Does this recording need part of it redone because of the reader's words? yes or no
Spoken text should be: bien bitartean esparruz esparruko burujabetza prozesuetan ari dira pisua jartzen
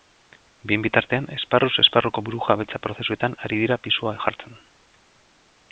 no